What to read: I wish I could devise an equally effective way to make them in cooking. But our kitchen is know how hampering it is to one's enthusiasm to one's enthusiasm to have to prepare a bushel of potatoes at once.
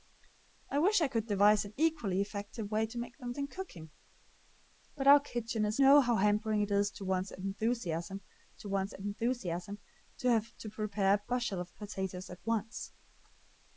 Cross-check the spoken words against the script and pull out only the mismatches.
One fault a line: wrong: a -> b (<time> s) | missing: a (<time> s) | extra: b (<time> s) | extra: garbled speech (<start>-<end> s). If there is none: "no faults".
no faults